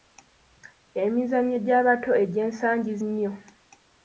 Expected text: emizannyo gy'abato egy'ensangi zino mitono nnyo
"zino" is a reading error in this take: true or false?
true